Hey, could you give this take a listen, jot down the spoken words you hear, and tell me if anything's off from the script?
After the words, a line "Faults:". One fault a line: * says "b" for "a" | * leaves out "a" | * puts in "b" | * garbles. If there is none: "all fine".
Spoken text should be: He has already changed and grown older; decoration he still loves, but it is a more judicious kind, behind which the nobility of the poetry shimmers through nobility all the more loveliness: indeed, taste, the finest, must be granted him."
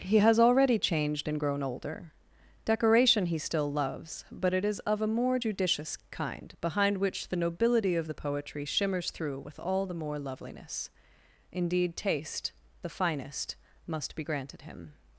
He has already changed and grown older; decoration he still loves, but it is of a more judicious kind, behind which the nobility of the poetry shimmers through with all the more loveliness: indeed, taste, the finest, must be granted him."
Faults:
* puts in "of"
* says "with" for "nobility"